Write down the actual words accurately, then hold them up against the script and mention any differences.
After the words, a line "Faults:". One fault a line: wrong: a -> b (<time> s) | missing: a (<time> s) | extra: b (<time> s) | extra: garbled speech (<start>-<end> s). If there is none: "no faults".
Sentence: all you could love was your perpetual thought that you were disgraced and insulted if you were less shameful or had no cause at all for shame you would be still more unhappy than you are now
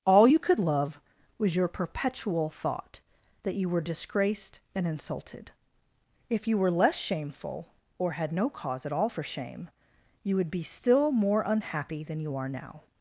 all you could love was your perpetual thought that you were disgraced and insulted if you were less shameful or had no cause at all for shame you would be still more unhappy than you are now
Faults:
no faults